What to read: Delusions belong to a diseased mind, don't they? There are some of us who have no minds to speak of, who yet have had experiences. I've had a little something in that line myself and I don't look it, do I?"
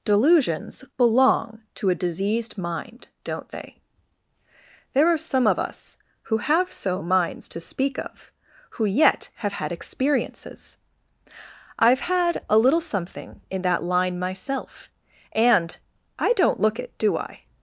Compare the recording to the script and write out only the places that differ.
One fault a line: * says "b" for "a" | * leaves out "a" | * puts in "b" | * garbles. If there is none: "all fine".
* says "so" for "no"